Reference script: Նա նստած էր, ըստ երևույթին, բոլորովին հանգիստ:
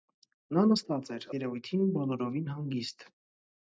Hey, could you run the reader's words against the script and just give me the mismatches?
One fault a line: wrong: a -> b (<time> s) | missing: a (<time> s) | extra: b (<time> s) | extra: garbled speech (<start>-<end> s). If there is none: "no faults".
missing: ըստ (1.3 s)